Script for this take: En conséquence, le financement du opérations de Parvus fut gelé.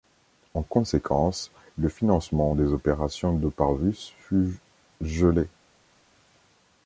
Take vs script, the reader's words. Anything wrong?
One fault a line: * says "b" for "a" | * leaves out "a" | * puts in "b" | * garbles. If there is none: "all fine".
* says "des" for "du"